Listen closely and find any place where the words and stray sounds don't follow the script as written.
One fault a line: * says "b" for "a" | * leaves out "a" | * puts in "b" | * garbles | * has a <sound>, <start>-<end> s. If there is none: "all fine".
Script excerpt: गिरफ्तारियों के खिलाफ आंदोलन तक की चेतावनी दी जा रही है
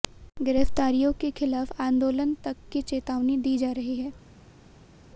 all fine